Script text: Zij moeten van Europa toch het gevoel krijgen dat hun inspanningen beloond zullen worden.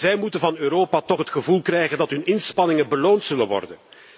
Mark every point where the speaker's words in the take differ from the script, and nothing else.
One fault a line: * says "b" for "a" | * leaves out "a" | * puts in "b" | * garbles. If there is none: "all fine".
all fine